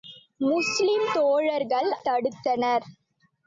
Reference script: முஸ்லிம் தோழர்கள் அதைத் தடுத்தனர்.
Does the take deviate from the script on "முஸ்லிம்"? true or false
false